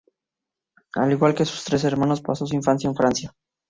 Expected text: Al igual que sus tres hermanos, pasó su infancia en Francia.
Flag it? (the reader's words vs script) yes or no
no